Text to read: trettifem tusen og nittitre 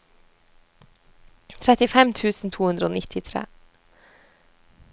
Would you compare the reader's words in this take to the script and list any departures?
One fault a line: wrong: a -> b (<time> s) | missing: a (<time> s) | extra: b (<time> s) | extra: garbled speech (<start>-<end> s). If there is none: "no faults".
extra: to hundre (2.5 s)